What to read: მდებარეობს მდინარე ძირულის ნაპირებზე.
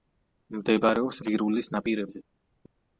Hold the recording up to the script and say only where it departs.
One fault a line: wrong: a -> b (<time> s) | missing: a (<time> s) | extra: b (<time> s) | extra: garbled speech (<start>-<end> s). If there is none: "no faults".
missing: მდინარე (1.2 s)